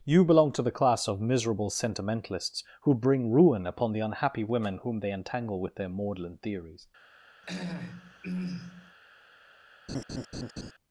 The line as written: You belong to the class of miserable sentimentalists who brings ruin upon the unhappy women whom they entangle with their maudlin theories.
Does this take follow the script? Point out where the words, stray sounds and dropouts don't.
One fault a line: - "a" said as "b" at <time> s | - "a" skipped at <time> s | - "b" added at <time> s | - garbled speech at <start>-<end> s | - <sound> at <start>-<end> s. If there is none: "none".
- "brings" said as "bring" at 3.0 s
- throat clearing at 7.4-9.0 s
- laugh at 9.9-10.7 s